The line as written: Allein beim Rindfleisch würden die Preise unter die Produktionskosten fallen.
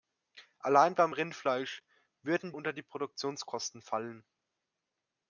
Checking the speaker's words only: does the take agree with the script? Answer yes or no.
no